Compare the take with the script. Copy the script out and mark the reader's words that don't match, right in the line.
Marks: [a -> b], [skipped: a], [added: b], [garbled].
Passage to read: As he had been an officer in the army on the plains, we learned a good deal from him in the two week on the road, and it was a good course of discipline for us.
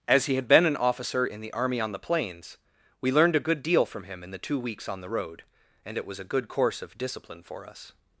As he had been an officer in the army on the plains, we learned a good deal from him in the two [week -> weeks] on the road, and it was a good course of discipline for us.